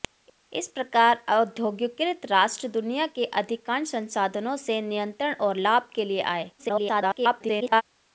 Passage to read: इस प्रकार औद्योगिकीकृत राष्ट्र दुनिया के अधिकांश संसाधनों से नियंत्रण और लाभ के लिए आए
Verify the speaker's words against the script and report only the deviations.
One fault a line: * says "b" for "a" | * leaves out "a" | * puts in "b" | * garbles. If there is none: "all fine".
* garbles